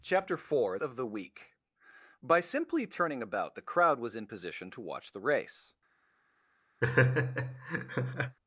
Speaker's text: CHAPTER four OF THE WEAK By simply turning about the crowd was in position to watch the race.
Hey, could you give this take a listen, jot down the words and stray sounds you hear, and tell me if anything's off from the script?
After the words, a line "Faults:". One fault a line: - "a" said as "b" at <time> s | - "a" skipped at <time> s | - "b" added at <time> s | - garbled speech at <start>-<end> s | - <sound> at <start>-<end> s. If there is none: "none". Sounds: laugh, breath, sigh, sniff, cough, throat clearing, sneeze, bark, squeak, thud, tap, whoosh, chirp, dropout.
CHAPTER four OF THE WEAK By simply turning about the crowd was in position to watch the race.
Faults:
- laugh at 6.8-8.4 s